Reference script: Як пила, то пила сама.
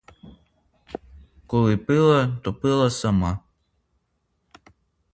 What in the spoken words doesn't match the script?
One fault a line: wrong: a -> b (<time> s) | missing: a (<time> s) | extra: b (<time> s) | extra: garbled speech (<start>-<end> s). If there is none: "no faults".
wrong: Як -> Коли (1.5 s)